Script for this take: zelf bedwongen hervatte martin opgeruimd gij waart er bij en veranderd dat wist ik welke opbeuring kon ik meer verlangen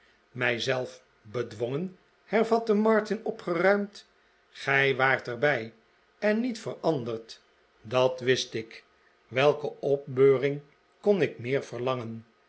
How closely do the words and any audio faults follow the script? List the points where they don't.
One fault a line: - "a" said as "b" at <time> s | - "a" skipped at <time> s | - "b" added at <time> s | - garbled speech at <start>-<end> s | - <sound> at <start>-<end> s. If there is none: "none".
- "niet" added at 6.4 s